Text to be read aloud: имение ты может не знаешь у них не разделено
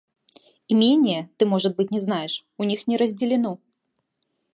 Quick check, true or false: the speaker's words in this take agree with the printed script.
false